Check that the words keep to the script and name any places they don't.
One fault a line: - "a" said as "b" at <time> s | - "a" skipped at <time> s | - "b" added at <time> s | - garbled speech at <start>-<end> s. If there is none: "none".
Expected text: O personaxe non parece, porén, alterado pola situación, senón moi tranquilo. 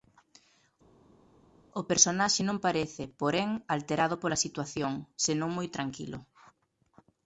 none